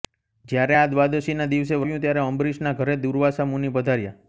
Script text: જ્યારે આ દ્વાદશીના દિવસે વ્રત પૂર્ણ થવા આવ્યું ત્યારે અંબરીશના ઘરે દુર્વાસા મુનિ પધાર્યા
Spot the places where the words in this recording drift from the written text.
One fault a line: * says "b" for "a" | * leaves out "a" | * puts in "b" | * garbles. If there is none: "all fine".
* leaves out "વ્રત પૂર્ણ થવા"